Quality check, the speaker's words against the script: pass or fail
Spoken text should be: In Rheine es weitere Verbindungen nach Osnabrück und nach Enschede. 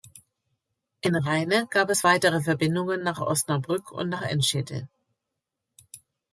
fail